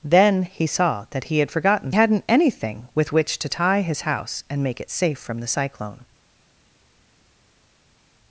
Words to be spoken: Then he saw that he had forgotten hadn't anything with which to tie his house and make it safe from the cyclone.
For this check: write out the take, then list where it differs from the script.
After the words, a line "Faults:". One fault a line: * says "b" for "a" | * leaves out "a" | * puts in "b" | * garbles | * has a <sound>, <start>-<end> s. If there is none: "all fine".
Then he saw that he had forgotten hadn't anything with which to tie his house and make it safe from the cyclone.
Faults:
all fine